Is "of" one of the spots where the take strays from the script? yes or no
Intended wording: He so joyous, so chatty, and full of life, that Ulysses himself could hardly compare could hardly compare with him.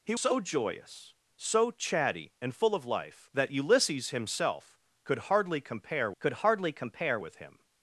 no